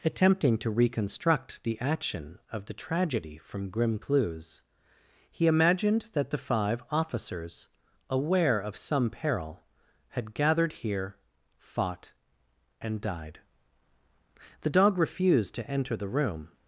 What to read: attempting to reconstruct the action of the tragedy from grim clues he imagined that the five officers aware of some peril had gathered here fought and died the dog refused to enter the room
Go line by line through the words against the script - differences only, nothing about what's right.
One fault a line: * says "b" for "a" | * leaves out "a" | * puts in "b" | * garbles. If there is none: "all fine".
all fine